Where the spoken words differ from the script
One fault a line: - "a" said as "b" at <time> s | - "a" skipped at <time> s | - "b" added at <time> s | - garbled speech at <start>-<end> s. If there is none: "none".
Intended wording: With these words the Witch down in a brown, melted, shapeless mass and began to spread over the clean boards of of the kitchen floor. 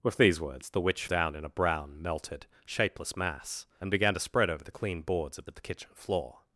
none